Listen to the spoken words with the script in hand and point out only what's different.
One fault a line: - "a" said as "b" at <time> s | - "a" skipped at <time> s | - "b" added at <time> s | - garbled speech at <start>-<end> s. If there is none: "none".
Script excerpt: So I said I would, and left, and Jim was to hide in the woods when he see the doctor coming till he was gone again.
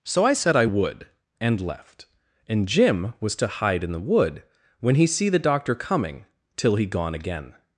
- "woods" said as "wood" at 4.0 s
- "was" skipped at 6.8 s